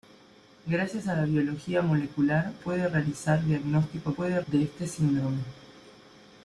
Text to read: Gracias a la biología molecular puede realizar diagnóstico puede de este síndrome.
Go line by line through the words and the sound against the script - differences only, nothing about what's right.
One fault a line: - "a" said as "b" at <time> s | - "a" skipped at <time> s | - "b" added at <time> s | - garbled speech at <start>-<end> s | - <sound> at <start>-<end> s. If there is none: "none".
none